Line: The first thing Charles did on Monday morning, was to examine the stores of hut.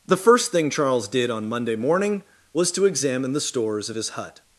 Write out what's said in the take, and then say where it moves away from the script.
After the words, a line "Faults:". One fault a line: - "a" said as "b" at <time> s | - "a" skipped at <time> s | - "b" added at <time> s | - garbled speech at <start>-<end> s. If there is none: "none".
The first thing Charles did on Monday morning, was to examine the stores of his hut.
Faults:
- "his" added at 3.9 s